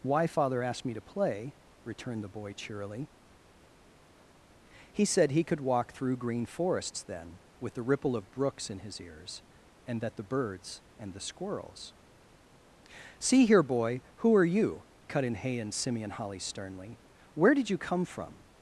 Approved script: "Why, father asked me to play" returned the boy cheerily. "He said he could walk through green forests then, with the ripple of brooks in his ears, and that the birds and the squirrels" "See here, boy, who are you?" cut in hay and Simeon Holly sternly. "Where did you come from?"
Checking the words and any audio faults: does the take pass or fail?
pass